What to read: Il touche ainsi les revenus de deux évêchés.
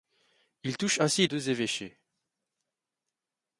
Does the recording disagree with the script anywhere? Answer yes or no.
yes